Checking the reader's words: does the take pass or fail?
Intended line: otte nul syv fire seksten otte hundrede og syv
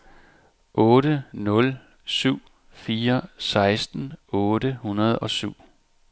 pass